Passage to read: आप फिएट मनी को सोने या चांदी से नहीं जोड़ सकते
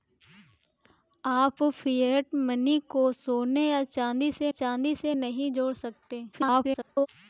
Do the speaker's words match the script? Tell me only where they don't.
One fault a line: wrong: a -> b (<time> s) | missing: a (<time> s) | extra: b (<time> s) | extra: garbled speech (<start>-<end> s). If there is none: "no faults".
extra: चांदी से (4.5 s)
extra: garbled speech (6.3-7.1 s)